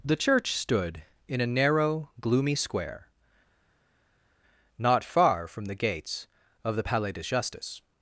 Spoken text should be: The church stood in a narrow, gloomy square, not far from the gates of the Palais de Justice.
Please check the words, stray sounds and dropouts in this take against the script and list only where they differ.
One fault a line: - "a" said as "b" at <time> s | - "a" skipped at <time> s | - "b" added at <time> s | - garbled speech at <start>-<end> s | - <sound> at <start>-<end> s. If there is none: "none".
none